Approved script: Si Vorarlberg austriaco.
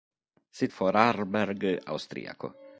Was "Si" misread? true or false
false